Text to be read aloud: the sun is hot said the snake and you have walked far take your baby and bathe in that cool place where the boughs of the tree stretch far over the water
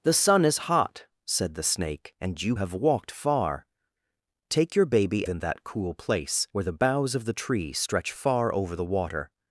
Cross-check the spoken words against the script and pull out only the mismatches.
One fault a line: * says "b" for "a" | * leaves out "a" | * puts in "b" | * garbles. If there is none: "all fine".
* leaves out "and bathe"